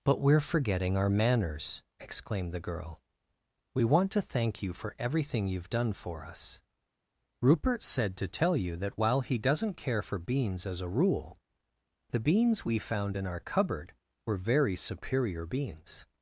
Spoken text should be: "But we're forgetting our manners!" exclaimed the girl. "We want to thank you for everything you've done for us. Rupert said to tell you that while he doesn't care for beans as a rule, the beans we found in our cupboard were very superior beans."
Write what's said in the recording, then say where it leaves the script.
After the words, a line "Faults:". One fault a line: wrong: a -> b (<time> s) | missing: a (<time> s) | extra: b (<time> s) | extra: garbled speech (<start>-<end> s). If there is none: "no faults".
"But we're forgetting our manners!" exclaimed the girl. "We want to thank you for everything you've done for us. Rupert said to tell you that while he doesn't care for beans as a rule, the beans we found in our cupboard were very superior beans."
Faults:
no faults